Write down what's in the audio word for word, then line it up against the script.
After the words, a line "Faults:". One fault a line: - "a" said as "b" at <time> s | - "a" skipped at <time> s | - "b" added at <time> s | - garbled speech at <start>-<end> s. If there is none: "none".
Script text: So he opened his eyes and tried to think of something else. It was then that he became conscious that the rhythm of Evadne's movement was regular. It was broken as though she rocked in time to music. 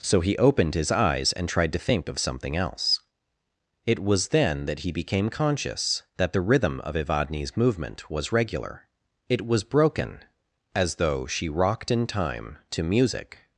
So he opened his eyes and tried to think of something else. It was then that he became conscious that the rhythm of Evadne's movement was regular. It was broken as though she rocked in time to music.
Faults:
none